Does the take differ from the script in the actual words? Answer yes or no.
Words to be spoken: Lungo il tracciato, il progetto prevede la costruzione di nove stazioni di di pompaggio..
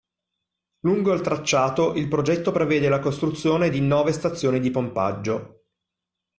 yes